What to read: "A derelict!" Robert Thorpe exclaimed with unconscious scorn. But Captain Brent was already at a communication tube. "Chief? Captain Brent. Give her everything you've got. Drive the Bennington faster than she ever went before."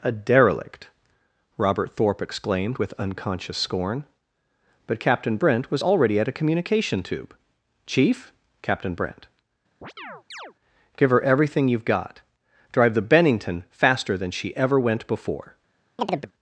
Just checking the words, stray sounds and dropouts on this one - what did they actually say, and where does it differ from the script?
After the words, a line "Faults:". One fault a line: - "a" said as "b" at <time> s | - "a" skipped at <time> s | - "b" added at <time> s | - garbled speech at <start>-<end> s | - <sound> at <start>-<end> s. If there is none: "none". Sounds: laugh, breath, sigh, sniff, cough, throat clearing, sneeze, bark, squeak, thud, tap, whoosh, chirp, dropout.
"A derelict!" Robert Thorpe exclaimed with unconscious scorn. But Captain Brent was already at a communication tube. "Chief? Captain Brent. Give her everything you've got. Drive the Bennington faster than she ever went before."
Faults:
- chirp at 9.8-10.5 s
- chirp at 16.0-16.3 s